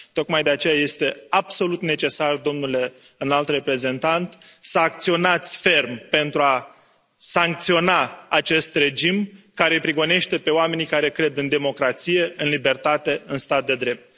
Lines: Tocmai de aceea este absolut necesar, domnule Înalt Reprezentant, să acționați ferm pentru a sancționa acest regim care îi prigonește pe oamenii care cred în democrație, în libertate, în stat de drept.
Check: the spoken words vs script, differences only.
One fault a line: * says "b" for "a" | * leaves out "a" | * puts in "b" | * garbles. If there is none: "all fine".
all fine